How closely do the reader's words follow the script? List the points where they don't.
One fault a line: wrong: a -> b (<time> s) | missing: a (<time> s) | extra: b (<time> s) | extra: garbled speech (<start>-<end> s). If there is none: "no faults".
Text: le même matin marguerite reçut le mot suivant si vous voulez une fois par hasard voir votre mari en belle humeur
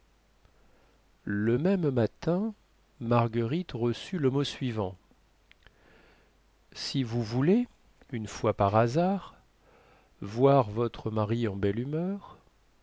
no faults